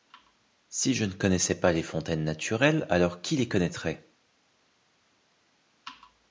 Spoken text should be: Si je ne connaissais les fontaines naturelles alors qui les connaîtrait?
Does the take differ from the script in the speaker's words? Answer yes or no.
yes